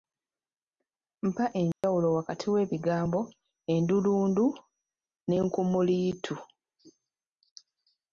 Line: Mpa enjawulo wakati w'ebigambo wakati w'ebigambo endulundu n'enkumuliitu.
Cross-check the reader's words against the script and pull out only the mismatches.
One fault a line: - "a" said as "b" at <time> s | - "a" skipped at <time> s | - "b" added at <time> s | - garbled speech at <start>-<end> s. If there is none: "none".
- "wakati w'ebigambo" skipped at 3.2 s